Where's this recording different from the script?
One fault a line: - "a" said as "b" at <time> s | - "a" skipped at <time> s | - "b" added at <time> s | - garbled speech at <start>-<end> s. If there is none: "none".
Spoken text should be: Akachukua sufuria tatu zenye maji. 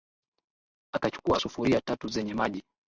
none